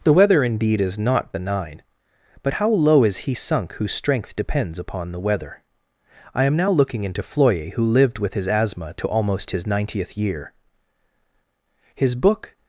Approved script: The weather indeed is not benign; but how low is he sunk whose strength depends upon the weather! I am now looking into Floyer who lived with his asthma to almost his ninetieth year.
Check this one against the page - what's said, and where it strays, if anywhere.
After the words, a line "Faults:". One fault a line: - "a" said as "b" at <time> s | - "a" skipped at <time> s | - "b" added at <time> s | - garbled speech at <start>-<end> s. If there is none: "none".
The weather indeed is not benign; but how low is he sunk whose strength depends upon the weather! I am now looking into Floyer who lived with his asthma to almost his ninetieth year. His book
Faults:
- "His book" added at 11.9 s